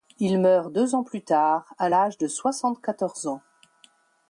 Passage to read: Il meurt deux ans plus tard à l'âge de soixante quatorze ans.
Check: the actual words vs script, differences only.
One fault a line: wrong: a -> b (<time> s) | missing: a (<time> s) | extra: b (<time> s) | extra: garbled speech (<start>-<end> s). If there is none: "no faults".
no faults